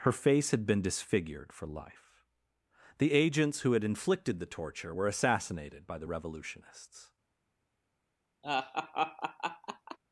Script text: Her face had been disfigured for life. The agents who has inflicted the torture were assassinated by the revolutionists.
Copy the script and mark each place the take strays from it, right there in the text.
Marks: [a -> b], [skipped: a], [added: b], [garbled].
Her face had been disfigured for life. The agents who [has -> had] inflicted the torture were assassinated by the revolutionists.